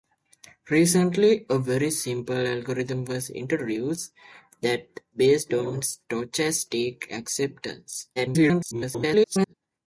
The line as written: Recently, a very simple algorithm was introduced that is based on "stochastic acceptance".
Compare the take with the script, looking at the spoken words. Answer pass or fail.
fail